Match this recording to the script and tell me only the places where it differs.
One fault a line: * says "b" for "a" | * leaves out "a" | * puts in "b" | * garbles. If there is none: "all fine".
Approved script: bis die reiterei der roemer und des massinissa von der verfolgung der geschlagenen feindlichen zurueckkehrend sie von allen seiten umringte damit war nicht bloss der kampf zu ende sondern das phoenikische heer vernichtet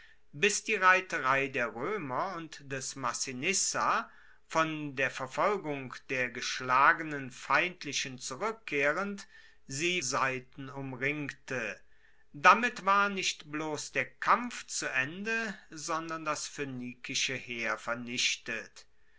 * leaves out "von allen"